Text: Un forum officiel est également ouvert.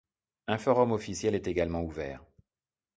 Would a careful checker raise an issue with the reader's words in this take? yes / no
no